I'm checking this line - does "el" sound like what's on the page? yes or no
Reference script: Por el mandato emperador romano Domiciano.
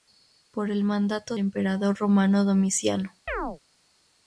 yes